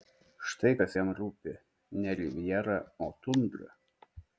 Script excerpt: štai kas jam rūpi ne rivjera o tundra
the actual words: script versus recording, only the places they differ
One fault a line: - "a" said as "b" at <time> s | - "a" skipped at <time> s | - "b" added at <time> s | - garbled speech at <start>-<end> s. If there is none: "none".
none